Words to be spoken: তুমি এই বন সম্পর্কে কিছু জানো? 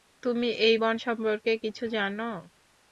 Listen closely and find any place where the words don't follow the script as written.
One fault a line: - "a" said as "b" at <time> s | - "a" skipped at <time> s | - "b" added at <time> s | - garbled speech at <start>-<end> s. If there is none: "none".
none